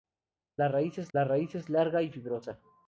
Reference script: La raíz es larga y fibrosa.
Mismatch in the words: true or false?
true